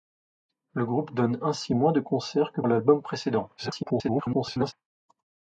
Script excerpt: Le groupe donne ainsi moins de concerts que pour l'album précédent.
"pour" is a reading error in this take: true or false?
true